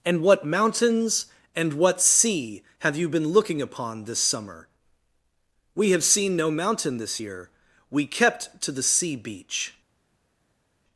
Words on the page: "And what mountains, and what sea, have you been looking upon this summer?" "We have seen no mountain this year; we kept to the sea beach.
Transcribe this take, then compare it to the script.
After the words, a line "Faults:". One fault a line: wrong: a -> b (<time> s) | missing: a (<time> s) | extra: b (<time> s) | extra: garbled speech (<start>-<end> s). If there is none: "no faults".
"And what mountains, and what sea, have you been looking upon this summer?" "We have seen no mountain this year; we kept to the sea beach.
Faults:
no faults